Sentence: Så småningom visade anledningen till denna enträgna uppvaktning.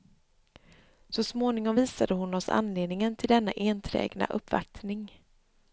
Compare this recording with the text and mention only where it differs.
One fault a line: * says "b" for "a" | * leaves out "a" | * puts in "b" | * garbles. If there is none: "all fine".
* puts in "hon oss"